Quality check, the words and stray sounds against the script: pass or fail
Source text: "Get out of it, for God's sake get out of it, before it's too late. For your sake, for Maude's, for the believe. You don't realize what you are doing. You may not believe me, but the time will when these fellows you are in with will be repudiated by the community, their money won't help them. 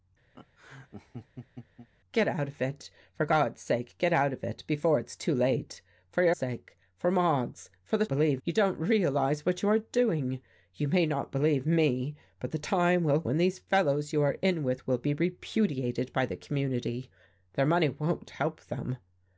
fail